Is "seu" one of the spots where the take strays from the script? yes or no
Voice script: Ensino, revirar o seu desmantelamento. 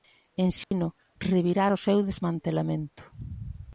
no